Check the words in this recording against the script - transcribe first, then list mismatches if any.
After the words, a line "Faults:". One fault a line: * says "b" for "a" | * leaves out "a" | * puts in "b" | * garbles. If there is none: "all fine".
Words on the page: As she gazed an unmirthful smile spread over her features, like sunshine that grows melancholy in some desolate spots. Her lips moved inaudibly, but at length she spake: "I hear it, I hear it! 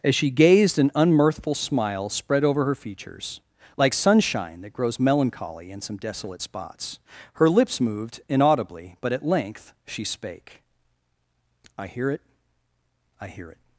As she gazed an unmirthful smile spread over her features, like sunshine that grows melancholy in some desolate spots. Her lips moved inaudibly, but at length she spake: "I hear it, I hear it!
Faults:
all fine